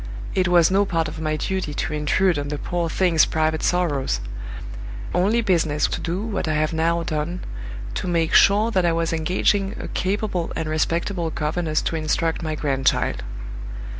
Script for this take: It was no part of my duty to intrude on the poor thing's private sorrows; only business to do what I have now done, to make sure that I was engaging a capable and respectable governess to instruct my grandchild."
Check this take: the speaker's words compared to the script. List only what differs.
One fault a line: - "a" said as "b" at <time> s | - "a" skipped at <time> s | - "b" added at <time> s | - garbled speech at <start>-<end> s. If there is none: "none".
none